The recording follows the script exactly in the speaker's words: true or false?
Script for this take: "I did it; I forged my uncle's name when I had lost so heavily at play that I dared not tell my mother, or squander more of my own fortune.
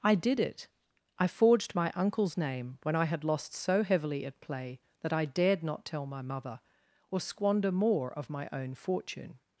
true